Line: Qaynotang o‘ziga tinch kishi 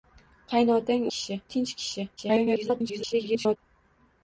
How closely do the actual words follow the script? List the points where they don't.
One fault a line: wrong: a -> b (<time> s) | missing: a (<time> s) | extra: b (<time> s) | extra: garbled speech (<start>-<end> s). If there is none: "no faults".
wrong: o‘ziga -> kishi (1.2 s)
extra: garbled speech (2.2-3.6 s)